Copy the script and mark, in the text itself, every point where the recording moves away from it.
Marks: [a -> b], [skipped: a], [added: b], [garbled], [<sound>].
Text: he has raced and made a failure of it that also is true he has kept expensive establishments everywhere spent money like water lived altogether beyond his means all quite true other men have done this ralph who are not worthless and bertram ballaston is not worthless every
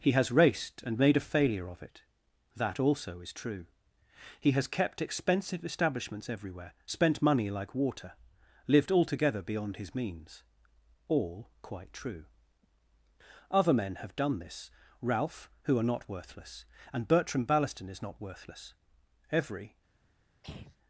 he has raced and made a failure of it that also is true he has kept expensive establishments everywhere spent money like water lived altogether beyond his means all quite true other men have done this ralph who are not worthless and bertram ballaston is not worthless every [throat clearing]